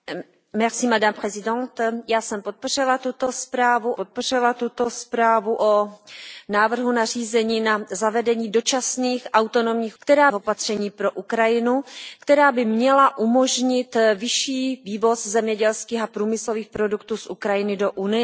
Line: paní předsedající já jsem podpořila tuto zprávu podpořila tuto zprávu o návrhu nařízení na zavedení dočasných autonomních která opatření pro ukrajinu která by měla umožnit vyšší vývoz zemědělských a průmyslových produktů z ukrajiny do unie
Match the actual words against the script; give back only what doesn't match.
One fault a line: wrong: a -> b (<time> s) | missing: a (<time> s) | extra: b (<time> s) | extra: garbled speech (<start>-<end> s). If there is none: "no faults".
no faults